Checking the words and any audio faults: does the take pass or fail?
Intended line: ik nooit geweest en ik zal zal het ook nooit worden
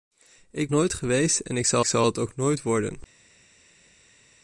pass